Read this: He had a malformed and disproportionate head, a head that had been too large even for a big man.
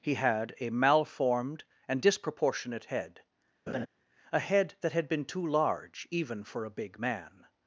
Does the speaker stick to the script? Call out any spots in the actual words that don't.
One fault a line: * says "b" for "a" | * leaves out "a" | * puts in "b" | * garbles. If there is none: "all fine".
all fine